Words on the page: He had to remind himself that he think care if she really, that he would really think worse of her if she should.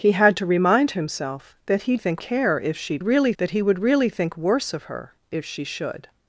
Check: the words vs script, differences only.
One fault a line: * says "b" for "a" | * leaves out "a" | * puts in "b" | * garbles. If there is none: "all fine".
all fine